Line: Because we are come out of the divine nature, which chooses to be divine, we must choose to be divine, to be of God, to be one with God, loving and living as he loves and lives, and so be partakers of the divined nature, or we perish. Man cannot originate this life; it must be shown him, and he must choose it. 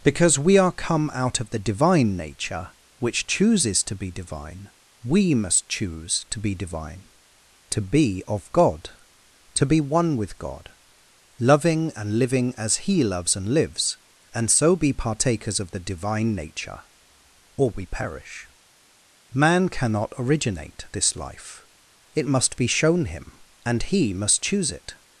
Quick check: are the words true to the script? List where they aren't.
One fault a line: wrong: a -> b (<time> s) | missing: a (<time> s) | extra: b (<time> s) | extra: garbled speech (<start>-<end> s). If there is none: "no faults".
wrong: divined -> divine (15.8 s)